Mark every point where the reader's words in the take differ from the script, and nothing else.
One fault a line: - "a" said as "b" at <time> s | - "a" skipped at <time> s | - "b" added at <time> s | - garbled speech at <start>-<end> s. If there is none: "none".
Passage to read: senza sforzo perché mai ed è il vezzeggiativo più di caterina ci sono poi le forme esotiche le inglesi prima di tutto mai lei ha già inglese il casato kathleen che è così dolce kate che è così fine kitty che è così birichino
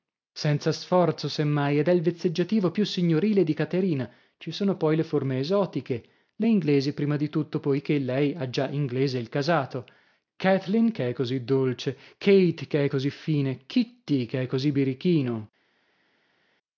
- "perché" said as "se" at 1.3 s
- "signorile" added at 2.9 s
- "mai" said as "poichè" at 7.6 s